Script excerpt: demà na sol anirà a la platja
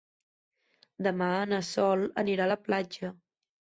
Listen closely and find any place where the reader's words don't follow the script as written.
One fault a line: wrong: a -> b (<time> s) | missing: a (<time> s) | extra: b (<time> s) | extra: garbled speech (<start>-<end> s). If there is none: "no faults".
no faults